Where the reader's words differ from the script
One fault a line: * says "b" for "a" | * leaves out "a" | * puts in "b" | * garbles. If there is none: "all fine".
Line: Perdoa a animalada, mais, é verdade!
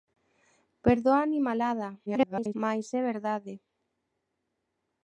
* garbles